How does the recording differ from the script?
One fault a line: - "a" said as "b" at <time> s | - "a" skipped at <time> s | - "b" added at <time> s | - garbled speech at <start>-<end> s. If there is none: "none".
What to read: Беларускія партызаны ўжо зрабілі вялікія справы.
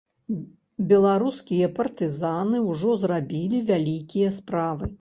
none